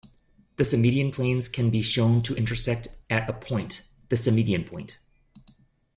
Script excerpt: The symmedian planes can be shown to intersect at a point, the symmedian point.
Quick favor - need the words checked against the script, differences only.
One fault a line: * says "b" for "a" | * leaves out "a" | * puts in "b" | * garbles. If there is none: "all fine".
all fine